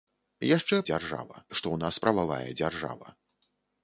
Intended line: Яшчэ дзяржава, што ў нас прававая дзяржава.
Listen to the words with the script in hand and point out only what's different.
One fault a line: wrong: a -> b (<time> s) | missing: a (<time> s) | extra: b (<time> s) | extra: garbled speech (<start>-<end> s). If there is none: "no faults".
no faults